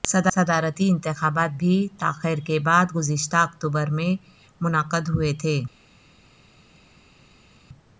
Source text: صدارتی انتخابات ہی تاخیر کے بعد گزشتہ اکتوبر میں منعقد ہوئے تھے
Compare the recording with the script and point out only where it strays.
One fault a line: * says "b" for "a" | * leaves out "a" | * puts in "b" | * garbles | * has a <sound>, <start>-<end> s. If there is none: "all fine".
* says "بھی" for "ہی"